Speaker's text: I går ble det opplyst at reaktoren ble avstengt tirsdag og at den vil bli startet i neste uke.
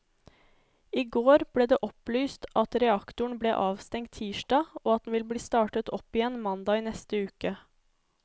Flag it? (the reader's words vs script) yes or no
yes